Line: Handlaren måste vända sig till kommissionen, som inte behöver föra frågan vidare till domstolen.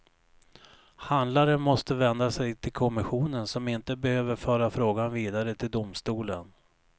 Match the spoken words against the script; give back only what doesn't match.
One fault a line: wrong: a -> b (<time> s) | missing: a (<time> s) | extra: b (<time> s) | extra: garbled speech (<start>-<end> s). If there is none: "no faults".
no faults